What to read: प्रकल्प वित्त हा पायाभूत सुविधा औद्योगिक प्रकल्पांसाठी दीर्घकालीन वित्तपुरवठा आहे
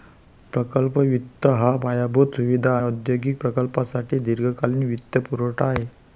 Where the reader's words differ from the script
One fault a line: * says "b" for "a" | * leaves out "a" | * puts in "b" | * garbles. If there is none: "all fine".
all fine